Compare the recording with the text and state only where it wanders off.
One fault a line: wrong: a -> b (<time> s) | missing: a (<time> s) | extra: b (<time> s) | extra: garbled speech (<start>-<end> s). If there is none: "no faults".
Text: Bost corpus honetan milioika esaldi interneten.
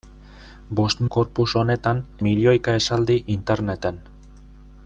no faults